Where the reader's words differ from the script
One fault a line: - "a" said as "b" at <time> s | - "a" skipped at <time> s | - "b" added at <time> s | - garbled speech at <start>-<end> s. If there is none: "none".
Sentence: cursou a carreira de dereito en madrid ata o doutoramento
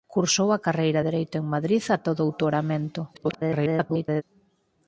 - "de" skipped at 1.0 s
- garbled speech at 3.1-4.2 s